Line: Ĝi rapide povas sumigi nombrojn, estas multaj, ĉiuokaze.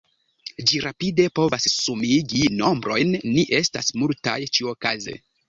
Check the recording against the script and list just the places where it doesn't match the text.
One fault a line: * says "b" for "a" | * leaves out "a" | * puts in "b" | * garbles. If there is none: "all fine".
* puts in "ni"